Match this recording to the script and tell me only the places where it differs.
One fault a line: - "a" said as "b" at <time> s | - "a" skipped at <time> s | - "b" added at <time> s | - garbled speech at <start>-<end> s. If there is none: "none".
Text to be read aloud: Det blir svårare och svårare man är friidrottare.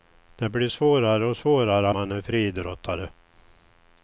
none